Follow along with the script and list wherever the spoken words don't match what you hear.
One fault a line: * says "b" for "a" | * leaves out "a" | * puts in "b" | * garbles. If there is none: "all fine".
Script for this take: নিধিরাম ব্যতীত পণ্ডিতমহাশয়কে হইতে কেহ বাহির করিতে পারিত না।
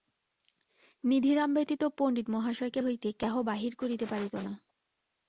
all fine